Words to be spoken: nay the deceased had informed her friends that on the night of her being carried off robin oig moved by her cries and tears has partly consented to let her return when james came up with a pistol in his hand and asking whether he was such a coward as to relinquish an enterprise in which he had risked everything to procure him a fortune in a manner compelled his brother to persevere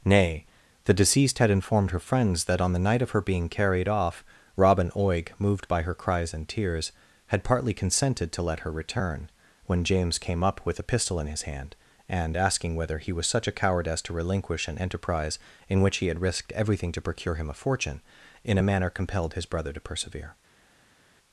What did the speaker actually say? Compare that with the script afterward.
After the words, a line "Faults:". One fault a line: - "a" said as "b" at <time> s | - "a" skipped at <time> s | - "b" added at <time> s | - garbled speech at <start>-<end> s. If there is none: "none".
nay the deceased had informed her friends that on the night of her being carried off robin oig moved by her cries and tears had partly consented to let her return when james came up with a pistol in his hand and asking whether he was such a coward as to relinquish an enterprise in which he had risked everything to procure him a fortune in a manner compelled his brother to persevere
Faults:
- "has" said as "had" at 7.3 s